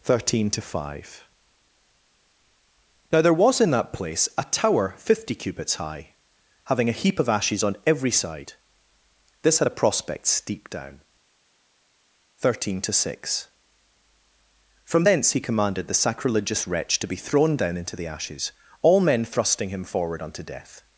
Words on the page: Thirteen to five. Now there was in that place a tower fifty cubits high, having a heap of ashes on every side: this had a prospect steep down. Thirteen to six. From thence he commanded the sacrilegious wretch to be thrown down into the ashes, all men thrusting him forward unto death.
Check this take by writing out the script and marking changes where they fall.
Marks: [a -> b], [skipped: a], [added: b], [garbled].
Thirteen to five. Now there was in that place a tower fifty cubits high, having a heap of ashes on every side: this had a prospect steep down. Thirteen to six. From thence he commanded the sacrilegious wretch to be thrown down into the ashes, all men thrusting him forward unto death.